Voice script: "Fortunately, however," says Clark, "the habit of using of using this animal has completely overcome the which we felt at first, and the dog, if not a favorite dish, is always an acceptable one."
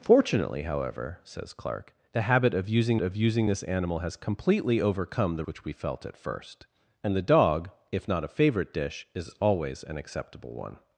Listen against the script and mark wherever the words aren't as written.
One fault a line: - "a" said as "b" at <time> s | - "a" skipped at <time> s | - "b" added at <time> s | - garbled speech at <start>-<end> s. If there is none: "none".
none